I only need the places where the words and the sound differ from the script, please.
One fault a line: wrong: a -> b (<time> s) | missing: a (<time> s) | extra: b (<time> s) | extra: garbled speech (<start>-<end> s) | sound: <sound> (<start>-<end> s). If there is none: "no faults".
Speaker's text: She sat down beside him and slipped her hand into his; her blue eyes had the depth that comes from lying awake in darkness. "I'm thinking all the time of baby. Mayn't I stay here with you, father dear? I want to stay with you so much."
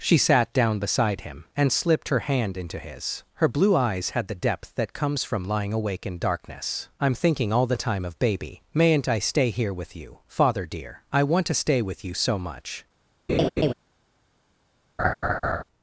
sound: laugh (13.3-13.7 s)
sound: laugh (15.0-15.6 s)